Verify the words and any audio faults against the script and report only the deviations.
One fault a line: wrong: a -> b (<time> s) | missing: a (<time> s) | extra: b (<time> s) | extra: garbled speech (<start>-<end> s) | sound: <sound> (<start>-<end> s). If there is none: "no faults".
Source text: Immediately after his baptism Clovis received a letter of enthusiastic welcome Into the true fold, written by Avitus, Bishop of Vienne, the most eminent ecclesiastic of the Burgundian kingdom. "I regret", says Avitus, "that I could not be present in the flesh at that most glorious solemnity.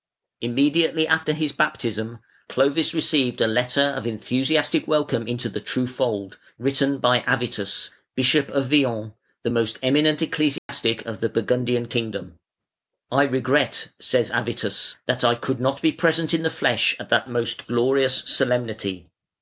sound: dropout (10.6-10.7 s)